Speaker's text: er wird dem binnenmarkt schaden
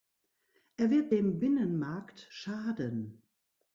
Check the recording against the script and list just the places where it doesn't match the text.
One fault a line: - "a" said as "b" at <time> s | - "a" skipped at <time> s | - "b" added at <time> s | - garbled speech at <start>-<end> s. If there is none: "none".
none